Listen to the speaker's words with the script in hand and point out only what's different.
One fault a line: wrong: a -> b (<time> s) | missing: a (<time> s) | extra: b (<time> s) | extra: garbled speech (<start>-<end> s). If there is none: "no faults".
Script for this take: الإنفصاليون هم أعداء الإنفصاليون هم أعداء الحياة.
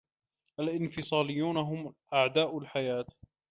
missing: الإنفصاليون هم أعداء (2.6 s)